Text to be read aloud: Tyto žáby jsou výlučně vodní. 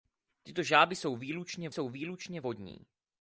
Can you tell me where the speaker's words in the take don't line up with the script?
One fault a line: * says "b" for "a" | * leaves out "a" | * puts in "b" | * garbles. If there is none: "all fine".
* puts in "jsou výlučně"